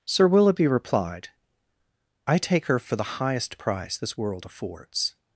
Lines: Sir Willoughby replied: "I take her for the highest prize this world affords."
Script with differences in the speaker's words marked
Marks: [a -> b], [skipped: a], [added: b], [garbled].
Sir Willoughby replied: "I take her for the highest [prize -> price] this world affords."